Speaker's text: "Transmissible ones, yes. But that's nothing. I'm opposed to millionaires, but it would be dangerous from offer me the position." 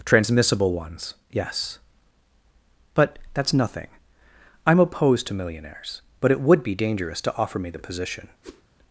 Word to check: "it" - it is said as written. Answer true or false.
true